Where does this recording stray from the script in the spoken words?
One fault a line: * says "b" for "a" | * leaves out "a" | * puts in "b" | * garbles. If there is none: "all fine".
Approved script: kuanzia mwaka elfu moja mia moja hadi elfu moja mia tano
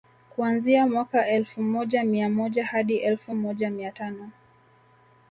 all fine